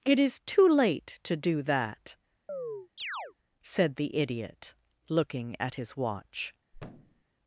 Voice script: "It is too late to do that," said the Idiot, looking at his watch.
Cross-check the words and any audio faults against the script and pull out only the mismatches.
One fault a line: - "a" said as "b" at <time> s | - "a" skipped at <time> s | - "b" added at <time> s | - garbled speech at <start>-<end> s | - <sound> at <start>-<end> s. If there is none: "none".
- chirp at 2.5-3.3 s
- thud at 6.7-7.2 s